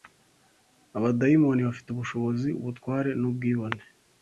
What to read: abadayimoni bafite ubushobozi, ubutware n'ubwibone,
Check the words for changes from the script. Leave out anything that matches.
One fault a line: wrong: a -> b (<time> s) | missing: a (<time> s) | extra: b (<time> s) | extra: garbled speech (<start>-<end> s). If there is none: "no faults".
no faults